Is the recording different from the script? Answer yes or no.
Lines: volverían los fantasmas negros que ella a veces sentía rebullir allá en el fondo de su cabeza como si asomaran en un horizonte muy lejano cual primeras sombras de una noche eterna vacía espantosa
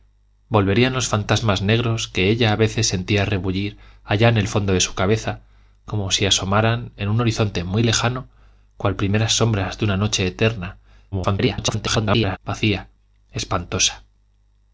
yes